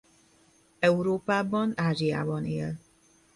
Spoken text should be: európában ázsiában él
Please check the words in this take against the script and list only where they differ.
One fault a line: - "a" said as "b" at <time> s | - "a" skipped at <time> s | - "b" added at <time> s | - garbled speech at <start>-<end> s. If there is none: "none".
none